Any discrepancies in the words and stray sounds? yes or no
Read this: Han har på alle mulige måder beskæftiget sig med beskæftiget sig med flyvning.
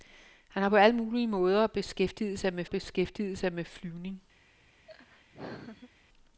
yes